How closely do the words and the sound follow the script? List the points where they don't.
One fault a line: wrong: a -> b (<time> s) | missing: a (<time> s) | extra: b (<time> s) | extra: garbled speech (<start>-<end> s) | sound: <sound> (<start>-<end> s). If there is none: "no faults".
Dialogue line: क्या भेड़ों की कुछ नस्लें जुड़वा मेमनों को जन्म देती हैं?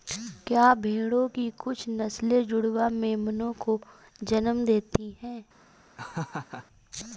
sound: laugh (6.0-6.7 s)